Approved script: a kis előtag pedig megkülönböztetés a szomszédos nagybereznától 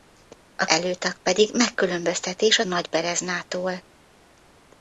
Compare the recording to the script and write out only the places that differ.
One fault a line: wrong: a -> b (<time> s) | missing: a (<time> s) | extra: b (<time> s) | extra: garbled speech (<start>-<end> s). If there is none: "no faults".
missing: kis (0.7 s)
missing: szomszédos (2.6 s)